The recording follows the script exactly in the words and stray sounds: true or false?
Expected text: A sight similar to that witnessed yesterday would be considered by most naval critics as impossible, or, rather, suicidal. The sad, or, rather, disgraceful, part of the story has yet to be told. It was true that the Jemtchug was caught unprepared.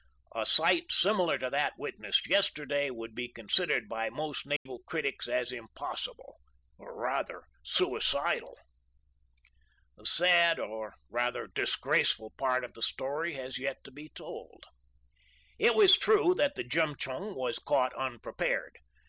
false